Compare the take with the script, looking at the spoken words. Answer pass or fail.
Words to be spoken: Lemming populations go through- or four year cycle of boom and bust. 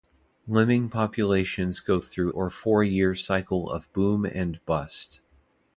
pass